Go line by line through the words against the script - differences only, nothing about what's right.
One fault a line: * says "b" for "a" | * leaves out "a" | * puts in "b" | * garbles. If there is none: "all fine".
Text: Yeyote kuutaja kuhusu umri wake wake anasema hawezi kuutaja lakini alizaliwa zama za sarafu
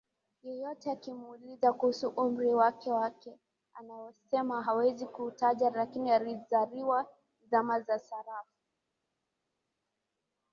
* says "akimuuliza" for "kuutaja"